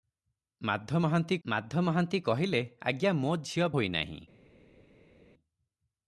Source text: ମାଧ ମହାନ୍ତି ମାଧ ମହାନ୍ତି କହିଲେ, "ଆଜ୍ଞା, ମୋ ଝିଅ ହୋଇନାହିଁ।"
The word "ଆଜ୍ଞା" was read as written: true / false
true